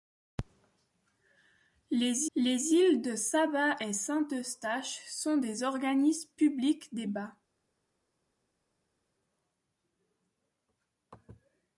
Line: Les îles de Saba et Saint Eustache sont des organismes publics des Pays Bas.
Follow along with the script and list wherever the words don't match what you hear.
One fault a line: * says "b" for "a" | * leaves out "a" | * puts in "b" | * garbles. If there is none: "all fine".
* puts in "les"
* leaves out "Pays"